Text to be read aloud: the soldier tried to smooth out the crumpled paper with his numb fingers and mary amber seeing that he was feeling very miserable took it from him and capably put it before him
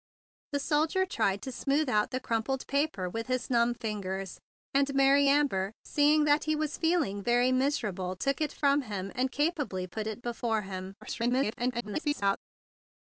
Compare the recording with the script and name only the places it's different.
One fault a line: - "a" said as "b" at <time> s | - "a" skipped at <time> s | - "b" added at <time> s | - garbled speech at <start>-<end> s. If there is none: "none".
- garbled speech at 11.0-12.4 s